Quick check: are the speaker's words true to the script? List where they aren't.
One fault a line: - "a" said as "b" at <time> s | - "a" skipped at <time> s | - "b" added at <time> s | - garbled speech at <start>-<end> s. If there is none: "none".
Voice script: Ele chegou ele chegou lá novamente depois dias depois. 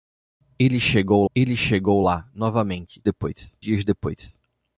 none